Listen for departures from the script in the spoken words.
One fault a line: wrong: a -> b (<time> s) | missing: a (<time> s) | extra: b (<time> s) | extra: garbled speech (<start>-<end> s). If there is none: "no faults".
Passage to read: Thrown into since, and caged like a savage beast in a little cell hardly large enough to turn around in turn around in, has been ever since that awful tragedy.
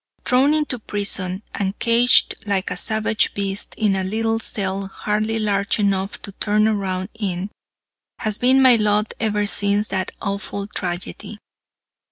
wrong: since -> prison (0.8 s)
wrong: turn around in has been -> has been my lot (8.2 s)